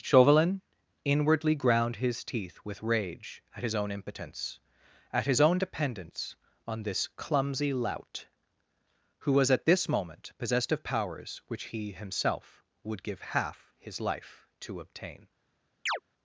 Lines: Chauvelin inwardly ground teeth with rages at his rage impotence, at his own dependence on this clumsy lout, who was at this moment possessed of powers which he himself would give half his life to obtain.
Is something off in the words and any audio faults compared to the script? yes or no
yes